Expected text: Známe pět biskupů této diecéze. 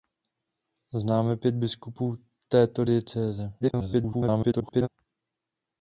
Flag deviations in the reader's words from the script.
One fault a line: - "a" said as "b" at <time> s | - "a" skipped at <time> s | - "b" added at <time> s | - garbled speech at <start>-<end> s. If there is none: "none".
- garbled speech at 3.6-4.9 s